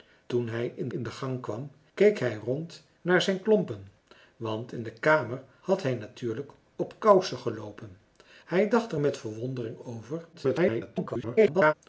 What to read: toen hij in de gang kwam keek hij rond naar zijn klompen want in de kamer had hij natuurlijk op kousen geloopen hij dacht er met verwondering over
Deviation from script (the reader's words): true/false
true